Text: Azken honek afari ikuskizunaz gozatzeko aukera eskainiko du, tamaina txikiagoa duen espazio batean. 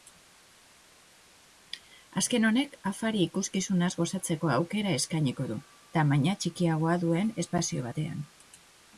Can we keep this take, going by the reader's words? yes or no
yes